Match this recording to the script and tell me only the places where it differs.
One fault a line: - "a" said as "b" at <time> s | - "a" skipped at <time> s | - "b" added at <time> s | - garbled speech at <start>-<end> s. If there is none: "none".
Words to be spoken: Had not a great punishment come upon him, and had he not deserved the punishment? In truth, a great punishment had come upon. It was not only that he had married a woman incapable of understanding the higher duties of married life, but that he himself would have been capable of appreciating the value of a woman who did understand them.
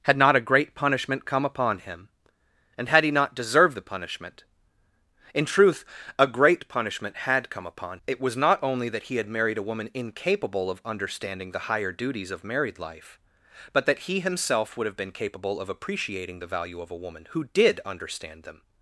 none